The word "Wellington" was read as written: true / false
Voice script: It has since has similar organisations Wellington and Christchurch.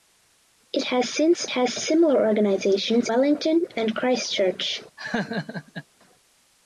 true